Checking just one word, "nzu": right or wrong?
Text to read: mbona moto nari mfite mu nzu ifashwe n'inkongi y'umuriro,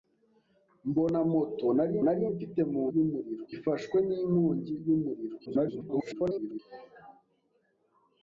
wrong